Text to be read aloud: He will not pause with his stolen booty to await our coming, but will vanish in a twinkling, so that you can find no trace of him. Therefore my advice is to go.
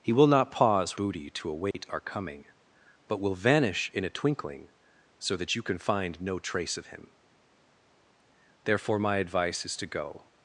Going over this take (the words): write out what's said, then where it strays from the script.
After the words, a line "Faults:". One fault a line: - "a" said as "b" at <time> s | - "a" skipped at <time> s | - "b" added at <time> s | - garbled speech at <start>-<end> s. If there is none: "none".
He will not pause booty to await our coming, but will vanish in a twinkling, so that you can find no trace of him. Therefore my advice is to go.
Faults:
- "with his stolen" skipped at 1.0 s